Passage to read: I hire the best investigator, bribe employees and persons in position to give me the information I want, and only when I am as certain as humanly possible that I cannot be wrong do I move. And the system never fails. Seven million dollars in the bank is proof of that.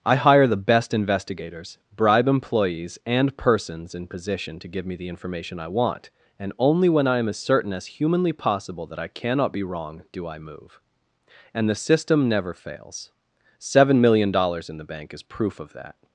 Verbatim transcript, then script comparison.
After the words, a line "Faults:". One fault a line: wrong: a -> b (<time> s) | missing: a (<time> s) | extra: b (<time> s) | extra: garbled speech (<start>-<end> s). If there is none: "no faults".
I hire the best investigators, bribe employees and persons in position to give me the information I want, and only when I am as certain as humanly possible that I cannot be wrong do I move. And the system never fails. Seven million dollars in the bank is proof of that.
Faults:
wrong: investigator -> investigators (0.9 s)